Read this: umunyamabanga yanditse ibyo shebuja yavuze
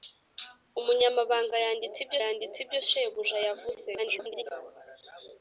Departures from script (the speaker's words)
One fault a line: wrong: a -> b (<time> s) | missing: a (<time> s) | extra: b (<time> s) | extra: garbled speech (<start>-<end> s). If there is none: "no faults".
extra: yanditse ibyo (2.2 s)
extra: garbled speech (4.0-4.5 s)